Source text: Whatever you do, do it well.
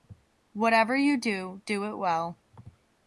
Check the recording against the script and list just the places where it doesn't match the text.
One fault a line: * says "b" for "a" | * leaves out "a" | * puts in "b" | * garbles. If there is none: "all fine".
all fine